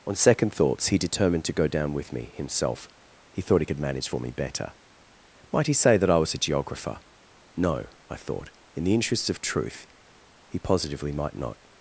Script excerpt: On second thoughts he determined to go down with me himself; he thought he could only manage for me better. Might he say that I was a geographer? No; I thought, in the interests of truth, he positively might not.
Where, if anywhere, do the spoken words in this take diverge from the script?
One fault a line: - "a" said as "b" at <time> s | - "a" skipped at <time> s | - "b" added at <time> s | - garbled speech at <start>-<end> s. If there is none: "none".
- "only" skipped at 3.8 s